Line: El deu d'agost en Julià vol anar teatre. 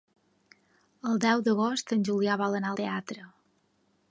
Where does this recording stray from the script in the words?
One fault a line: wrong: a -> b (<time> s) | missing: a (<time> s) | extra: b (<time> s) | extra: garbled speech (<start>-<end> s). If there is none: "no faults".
no faults